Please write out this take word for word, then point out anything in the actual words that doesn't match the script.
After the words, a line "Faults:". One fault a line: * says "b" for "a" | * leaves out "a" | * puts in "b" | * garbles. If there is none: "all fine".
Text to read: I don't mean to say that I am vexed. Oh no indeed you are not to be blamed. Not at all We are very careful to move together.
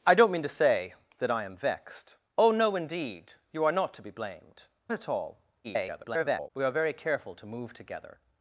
I don't mean to say that I am vexed. Oh no indeed you are not to be blamed. At all [garbled] We are very careful to move together.
Faults:
* leaves out "Not"
* garbles